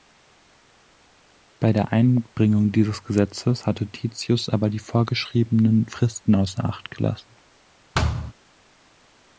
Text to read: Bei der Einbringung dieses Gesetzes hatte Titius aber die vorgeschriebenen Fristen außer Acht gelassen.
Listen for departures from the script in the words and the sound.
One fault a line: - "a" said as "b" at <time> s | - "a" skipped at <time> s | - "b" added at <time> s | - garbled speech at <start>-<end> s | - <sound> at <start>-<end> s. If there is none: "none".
- thud at 7.9-8.3 s